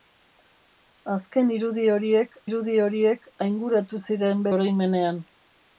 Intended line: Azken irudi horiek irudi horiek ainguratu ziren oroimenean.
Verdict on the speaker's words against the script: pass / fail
pass